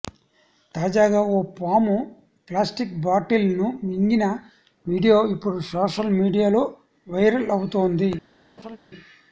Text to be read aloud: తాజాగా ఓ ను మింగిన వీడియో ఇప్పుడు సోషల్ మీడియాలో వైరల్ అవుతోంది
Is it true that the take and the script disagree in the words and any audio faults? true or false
true